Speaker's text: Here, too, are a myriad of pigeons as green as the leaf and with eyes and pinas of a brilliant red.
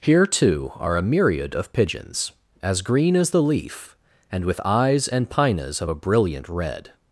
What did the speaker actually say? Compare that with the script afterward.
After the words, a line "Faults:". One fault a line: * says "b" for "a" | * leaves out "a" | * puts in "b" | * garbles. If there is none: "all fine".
Here, too, are a myriad of pigeons as green as the leaf and with eyes and pinas of a brilliant red.
Faults:
all fine